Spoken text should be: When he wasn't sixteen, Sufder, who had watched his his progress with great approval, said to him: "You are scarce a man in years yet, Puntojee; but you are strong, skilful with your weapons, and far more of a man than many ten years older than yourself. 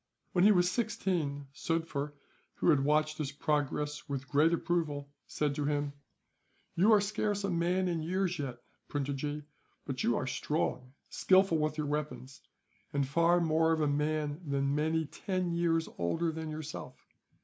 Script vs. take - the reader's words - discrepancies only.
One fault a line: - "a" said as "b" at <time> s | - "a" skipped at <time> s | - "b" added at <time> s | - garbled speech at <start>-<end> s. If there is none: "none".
- "wasn't" said as "was" at 0.5 s
- "his" skipped at 3.3 s